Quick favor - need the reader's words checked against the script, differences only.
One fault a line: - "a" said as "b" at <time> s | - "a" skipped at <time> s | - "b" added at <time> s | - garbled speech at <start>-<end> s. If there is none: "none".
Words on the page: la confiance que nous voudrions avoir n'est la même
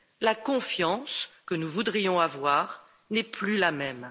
- "plus" added at 3.2 s